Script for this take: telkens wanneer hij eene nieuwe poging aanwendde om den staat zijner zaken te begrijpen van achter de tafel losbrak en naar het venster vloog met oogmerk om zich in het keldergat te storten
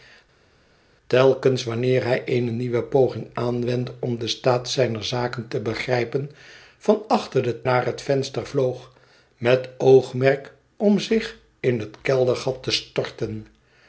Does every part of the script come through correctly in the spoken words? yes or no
no